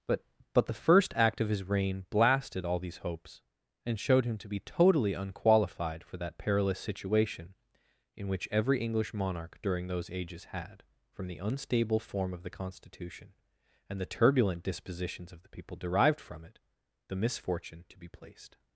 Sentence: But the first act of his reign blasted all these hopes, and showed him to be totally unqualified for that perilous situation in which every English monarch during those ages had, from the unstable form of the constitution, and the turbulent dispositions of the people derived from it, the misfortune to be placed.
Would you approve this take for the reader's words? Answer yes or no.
no